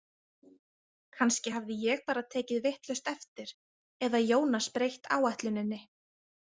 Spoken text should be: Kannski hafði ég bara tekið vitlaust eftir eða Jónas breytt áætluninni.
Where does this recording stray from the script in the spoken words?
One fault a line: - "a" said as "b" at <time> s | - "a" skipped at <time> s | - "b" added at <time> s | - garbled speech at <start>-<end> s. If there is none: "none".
none